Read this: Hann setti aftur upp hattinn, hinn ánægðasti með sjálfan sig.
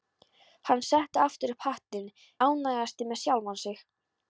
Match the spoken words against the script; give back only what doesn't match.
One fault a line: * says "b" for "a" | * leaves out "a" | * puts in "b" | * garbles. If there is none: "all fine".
* leaves out "hinn"